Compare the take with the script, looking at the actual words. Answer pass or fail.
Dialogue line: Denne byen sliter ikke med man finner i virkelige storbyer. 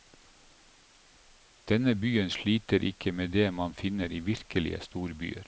fail